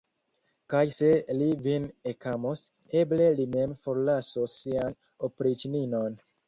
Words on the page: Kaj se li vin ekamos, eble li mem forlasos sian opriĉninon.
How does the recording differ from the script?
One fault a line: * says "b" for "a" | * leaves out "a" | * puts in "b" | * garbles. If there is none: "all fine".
all fine